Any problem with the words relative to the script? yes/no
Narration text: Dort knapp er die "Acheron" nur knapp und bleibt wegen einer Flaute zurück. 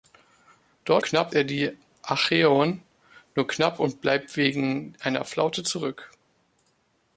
no